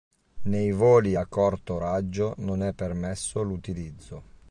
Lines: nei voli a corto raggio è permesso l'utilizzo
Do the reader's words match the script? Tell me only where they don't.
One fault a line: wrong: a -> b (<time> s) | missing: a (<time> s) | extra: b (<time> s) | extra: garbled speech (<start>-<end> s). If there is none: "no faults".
extra: non (2.4 s)